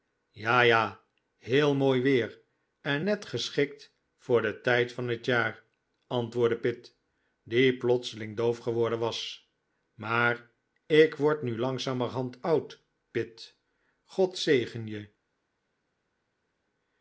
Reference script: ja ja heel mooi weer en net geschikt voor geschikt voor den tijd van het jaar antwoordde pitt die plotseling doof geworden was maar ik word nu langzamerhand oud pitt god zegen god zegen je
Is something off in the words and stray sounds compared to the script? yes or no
yes